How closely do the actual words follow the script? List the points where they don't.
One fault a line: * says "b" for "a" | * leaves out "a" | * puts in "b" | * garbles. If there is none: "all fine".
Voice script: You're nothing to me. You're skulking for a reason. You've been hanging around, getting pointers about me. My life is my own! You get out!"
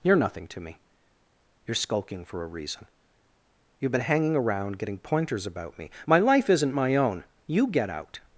* says "isn't" for "is"